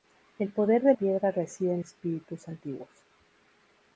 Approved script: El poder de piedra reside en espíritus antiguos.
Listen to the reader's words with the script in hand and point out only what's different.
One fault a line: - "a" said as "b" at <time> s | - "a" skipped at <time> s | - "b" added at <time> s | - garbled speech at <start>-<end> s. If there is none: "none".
none